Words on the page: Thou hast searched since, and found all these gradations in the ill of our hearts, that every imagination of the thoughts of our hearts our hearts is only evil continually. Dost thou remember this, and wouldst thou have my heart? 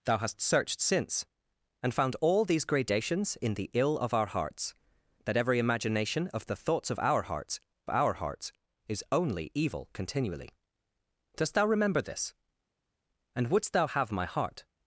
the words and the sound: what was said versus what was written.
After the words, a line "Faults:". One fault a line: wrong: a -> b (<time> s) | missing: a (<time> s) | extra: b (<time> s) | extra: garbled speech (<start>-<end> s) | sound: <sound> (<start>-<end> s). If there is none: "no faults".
Thou hast searched since, and found all these gradations in the ill of our hearts, that every imagination of the thoughts of our hearts our hearts is only evil continually. Dost thou remember this, and wouldst thou have my heart?
Faults:
no faults